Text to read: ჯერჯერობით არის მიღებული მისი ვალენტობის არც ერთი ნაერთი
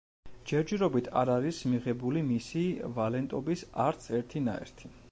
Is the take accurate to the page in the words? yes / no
no